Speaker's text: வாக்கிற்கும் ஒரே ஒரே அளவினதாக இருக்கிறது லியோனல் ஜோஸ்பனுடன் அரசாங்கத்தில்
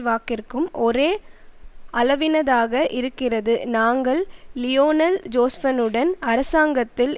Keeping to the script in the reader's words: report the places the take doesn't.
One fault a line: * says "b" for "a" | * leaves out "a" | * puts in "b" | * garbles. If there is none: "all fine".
* leaves out "ஒரே"
* puts in "நாங்கள்"